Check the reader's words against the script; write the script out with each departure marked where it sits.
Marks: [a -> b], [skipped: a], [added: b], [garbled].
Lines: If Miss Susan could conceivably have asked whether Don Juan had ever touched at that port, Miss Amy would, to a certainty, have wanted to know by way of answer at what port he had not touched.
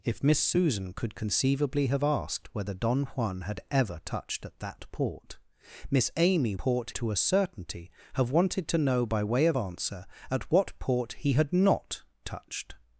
If Miss Susan could conceivably have asked whether Don Juan had ever touched at that port, Miss Amy [would, -> port] to a certainty, have wanted to know by way of answer at what port he had not touched.